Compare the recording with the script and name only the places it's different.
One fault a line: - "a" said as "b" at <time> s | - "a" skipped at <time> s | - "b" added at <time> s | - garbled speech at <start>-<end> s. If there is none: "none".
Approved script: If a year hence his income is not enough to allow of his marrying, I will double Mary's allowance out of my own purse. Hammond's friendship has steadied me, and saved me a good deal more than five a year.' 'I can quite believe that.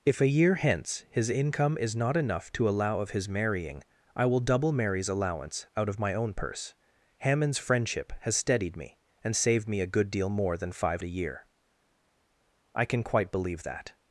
none